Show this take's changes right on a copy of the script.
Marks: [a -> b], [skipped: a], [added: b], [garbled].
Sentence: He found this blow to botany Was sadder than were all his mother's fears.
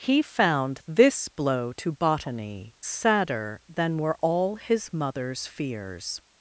He found this blow to botany [skipped: Was] sadder than were all his mother's fears.